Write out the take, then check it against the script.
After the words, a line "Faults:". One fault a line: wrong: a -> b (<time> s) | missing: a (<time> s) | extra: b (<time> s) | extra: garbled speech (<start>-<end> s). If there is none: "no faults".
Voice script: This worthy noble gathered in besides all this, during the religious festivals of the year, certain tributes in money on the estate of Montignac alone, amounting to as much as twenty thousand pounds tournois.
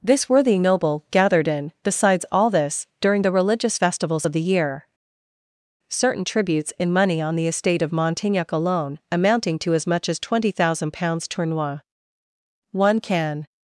This worthy noble gathered in besides all this, during the religious festivals of the year, certain tributes in money on the estate of Montignac alone, amounting to as much as twenty thousand pounds tournois. One can
Faults:
extra: One can (12.7 s)